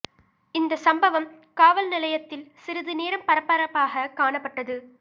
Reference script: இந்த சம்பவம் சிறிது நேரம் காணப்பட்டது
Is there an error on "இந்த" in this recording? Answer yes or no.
no